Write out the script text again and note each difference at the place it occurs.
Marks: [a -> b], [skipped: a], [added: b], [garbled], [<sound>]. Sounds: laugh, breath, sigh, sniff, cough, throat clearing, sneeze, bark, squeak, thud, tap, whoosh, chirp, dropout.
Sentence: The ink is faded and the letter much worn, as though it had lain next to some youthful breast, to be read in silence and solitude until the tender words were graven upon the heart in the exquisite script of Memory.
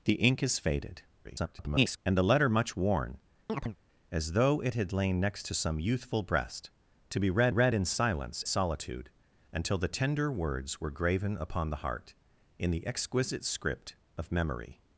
The ink is faded [garbled] and the letter much worn, [chirp] as though it had lain next to some youthful breast, to be read [added: read] in silence [skipped: and] solitude until the tender words were graven upon the heart in the exquisite script of Memory.